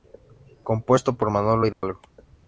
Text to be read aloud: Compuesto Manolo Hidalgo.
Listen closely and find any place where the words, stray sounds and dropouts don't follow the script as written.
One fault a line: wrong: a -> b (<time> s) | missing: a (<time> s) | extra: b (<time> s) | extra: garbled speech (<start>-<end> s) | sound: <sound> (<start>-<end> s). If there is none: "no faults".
extra: por (1.1 s)
sound: dropout (1.7-1.8 s)